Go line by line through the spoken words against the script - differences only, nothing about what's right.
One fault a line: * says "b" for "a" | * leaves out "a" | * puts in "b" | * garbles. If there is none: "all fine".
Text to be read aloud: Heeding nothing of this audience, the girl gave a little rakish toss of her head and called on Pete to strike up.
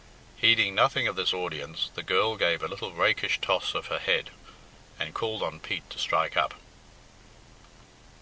all fine